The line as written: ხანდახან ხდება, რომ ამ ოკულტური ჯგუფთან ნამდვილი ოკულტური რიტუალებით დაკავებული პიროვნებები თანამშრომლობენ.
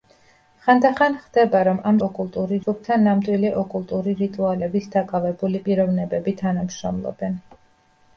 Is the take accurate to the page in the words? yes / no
yes